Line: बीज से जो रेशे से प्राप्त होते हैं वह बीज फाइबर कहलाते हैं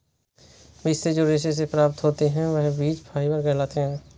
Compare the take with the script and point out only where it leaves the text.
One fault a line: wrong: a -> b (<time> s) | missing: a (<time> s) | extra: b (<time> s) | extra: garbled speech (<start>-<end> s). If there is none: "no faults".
no faults